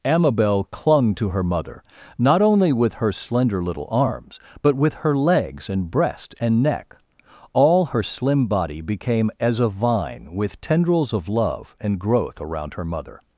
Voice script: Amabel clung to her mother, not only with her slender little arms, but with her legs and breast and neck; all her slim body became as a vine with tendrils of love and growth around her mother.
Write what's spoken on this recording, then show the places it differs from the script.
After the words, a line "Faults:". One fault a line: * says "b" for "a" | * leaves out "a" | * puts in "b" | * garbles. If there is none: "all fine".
Amabel clung to her mother, not only with her slender little arms, but with her legs and breast and neck; all her slim body became as a vine with tendrils of love and growth around her mother.
Faults:
all fine